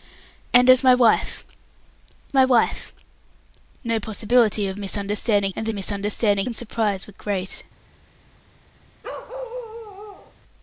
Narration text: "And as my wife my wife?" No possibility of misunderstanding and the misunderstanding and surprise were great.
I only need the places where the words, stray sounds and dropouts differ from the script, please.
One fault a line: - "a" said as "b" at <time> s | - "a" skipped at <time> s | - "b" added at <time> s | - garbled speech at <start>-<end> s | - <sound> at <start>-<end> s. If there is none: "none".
- bark at 9.0-10.3 s